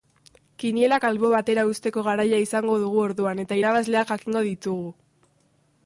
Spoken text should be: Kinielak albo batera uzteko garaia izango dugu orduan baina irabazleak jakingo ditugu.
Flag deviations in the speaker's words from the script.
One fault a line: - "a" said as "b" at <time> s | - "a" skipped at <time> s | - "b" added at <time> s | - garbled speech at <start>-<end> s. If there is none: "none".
- "baina" said as "eta" at 3.5 s